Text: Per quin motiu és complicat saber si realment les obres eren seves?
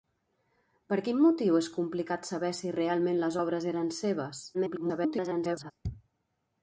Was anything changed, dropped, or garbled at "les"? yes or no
no